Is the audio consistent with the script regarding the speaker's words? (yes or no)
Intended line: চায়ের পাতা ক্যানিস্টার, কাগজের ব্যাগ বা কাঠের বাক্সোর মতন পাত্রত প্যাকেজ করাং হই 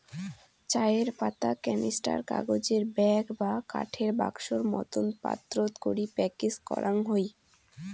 no